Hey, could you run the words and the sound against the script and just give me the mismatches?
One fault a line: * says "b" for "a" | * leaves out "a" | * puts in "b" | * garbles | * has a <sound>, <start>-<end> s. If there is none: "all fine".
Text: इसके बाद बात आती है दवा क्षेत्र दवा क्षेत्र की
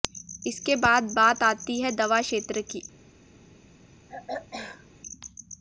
* leaves out "दवा क्षेत्र"
* has a throat clearing, 4.1-4.9 s